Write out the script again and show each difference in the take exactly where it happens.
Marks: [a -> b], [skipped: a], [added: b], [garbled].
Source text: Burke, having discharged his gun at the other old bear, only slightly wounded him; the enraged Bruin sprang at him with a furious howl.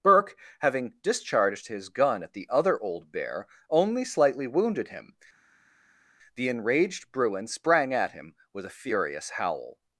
Burke, having discharged his gun at the other old bear, only slightly wounded him; the enraged Bruin sprang at him with a furious howl.